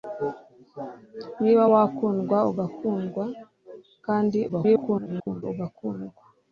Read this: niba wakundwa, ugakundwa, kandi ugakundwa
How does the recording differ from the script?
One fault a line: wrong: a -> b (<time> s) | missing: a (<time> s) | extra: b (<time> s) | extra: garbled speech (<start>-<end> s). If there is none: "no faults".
extra: garbled speech (4.5-5.4 s)